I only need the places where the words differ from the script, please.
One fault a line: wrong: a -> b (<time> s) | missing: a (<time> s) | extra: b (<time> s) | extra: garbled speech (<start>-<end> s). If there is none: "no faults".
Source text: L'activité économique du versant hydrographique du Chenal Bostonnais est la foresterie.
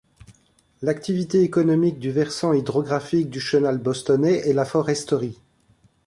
no faults